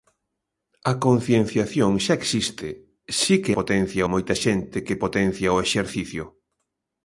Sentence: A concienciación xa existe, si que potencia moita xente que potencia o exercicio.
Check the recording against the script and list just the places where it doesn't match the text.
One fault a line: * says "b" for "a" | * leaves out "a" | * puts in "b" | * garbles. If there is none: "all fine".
all fine